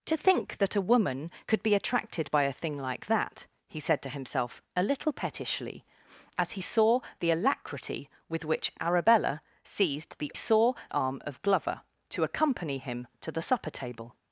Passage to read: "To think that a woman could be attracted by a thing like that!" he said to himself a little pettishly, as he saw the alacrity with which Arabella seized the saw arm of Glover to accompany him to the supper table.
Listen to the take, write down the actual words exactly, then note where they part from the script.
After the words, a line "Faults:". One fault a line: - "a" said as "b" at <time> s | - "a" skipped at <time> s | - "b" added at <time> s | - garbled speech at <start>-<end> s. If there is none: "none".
"To think that a woman could be attracted by a thing like that!" he said to himself a little pettishly, as he saw the alacrity with which Arabella seized the saw arm of Glover to accompany him to the supper table.
Faults:
none